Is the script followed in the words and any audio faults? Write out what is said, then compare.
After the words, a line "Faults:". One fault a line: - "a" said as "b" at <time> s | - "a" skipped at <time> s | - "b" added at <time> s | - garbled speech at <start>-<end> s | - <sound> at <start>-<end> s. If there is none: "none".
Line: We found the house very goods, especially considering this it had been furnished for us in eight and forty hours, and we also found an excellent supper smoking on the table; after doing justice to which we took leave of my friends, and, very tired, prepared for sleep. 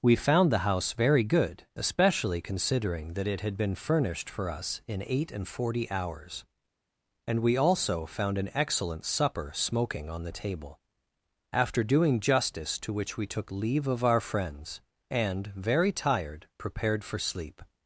We found the house very good, especially considering that it had been furnished for us in eight and forty hours, and we also found an excellent supper smoking on the table; after doing justice to which we took leave of our friends, and, very tired, prepared for sleep.
Faults:
- "goods" said as "good" at 1.2 s
- "this" said as "that" at 3.2 s
- "my" said as "our" at 14.1 s